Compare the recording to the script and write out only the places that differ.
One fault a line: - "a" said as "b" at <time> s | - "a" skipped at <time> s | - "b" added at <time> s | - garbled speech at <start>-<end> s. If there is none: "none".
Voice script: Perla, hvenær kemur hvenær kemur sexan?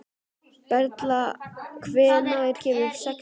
- "hvenær kemur" skipped at 2.9 s